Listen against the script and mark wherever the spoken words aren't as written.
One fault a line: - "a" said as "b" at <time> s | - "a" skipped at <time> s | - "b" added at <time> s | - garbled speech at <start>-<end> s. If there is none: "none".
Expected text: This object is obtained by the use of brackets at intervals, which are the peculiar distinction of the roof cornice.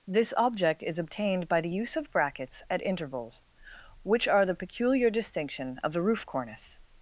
none